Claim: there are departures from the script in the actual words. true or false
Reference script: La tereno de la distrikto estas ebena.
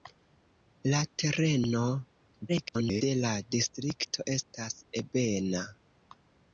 true